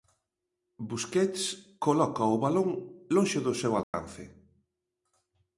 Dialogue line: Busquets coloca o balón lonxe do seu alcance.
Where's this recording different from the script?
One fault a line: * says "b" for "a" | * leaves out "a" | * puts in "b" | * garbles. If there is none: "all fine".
all fine